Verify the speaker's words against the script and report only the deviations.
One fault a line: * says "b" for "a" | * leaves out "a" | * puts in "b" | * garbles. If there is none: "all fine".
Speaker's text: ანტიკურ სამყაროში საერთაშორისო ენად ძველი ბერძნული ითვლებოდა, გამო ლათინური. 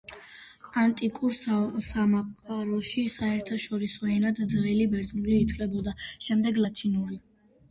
* says "შემდეგ" for "გამო"